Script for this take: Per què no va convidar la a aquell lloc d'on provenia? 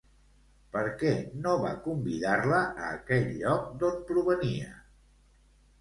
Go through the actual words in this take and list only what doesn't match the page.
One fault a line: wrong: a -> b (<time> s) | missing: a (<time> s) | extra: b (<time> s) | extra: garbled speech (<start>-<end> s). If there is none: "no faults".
no faults